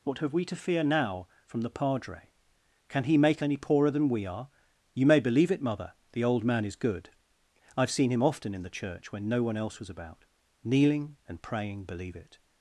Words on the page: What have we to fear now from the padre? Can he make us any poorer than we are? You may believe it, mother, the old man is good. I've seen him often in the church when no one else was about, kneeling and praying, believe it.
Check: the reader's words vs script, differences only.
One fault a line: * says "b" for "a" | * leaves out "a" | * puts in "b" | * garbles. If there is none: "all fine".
* leaves out "us"